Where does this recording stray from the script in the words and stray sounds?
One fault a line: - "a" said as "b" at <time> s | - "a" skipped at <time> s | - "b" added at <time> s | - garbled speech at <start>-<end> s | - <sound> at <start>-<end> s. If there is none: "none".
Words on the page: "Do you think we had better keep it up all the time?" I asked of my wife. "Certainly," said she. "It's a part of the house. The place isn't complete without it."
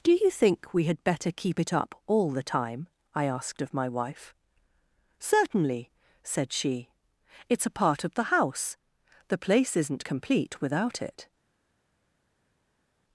none